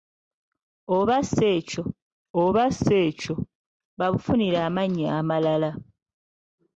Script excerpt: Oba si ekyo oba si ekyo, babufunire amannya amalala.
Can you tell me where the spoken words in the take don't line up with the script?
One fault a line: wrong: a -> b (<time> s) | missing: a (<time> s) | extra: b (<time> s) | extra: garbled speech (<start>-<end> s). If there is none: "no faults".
no faults